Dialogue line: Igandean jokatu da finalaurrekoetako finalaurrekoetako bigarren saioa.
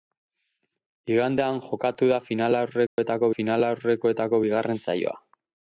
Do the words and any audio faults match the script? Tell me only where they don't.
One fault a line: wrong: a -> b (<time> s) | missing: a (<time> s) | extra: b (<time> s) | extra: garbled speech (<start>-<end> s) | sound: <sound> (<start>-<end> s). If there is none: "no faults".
sound: dropout (2.9-3.0 s)